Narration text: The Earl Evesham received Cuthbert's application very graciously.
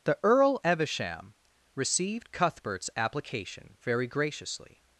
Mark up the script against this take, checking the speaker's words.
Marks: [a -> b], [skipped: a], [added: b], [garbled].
The Earl Evesham received Cuthbert's application very graciously.